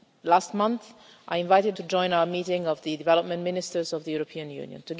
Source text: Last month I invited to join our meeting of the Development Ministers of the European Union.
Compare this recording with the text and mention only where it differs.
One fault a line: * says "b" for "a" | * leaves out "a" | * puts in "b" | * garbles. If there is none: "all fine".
all fine